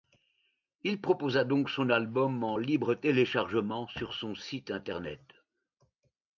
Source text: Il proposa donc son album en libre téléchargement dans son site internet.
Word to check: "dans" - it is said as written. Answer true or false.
false